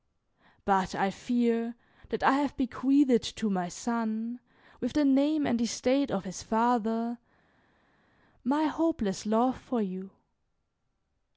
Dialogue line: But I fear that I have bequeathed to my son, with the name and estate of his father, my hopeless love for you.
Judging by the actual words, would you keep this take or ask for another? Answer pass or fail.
pass